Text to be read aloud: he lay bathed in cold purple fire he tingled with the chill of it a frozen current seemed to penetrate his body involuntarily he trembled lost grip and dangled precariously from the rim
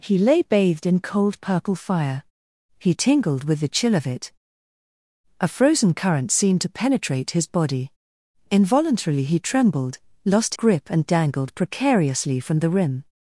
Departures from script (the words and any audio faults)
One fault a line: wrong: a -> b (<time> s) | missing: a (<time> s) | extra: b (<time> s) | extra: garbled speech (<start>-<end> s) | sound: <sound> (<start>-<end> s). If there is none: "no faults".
no faults